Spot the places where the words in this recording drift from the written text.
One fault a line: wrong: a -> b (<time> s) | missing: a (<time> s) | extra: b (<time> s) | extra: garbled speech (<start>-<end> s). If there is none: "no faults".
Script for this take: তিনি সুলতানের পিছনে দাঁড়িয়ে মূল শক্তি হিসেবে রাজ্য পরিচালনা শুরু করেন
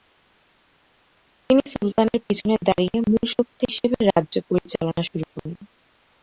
no faults